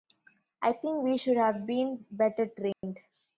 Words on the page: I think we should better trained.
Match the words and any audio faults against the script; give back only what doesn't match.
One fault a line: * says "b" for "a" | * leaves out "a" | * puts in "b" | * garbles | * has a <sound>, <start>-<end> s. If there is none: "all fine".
* puts in "have been"
* has a dropout, 2.7-2.8 s